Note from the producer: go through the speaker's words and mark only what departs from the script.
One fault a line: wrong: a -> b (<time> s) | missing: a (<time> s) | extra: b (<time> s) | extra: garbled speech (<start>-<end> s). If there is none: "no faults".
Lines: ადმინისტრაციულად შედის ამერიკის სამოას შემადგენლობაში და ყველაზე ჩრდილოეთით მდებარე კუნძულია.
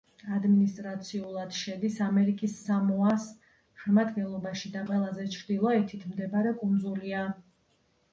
no faults